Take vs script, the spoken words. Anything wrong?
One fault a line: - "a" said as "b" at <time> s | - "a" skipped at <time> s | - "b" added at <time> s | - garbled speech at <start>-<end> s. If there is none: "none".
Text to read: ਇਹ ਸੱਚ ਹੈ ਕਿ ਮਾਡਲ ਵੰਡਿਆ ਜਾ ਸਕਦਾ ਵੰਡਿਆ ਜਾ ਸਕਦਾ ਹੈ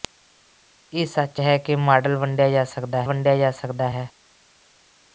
none